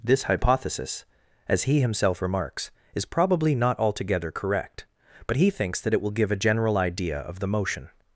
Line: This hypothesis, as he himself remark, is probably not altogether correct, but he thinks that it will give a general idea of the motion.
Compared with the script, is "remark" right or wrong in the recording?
wrong